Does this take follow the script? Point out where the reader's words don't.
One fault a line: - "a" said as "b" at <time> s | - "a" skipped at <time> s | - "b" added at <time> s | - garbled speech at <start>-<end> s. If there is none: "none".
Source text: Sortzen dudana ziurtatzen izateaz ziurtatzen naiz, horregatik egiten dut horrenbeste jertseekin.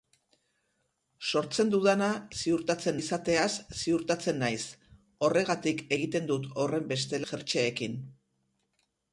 none